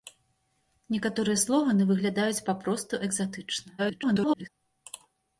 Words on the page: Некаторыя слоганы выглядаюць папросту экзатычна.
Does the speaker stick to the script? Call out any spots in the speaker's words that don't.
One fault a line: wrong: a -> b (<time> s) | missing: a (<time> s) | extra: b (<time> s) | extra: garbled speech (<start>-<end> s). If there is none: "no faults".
extra: garbled speech (3.8-4.5 s)